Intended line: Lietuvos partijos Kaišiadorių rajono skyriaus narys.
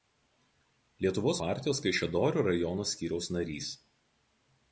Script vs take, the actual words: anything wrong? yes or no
no